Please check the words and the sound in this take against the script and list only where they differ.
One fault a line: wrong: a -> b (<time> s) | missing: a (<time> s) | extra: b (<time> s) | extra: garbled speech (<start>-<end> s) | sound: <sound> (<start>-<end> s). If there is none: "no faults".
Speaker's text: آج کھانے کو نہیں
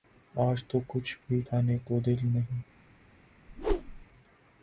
extra: تو کچھ بھی (0.7 s)
extra: دل (2.0 s)
sound: whoosh (3.5-4.1 s)